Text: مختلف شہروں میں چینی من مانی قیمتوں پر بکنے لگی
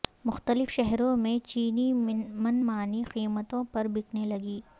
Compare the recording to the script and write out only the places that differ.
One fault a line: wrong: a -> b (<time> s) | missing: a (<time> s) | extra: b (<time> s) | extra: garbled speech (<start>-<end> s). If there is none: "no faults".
no faults